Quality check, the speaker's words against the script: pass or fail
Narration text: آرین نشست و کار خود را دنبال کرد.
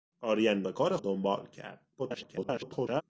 fail